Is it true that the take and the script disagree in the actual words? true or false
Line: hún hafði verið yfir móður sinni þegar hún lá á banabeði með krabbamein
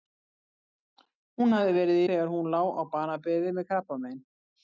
true